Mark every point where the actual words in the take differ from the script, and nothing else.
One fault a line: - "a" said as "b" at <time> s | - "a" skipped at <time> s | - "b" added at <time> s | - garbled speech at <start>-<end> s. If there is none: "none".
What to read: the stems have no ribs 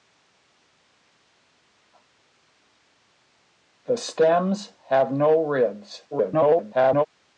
- garbled speech at 6.1-7.1 s